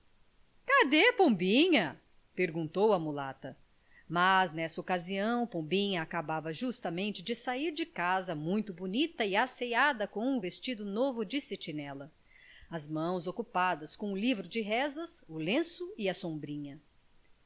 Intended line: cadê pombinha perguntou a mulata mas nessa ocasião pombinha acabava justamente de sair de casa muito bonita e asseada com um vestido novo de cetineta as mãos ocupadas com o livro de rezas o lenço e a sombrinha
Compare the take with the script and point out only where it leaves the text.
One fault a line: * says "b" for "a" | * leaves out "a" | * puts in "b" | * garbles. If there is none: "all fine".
all fine